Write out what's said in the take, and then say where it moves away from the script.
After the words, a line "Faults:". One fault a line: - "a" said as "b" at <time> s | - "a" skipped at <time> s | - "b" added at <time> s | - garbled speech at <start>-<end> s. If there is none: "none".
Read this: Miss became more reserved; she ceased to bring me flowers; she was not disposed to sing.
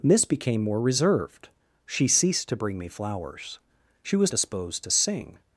Miss became more reserved; she ceased to bring me flowers; she was disposed to sing.
Faults:
- "not" skipped at 4.3 s